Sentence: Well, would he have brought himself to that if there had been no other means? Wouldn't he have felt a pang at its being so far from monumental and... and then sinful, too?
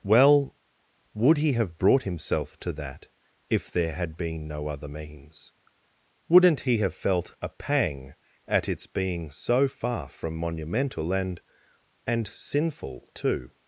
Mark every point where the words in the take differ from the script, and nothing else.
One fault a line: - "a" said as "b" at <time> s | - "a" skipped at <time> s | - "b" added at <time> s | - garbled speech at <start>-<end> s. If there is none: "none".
- "then" skipped at 12.3 s